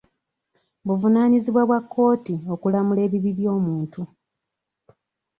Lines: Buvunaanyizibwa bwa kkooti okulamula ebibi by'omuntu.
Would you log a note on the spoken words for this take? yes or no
no